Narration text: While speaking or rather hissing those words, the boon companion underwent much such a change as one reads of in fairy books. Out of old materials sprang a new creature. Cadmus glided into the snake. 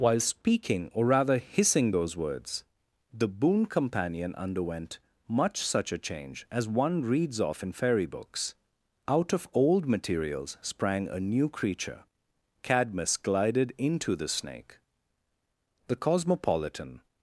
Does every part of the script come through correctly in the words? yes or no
no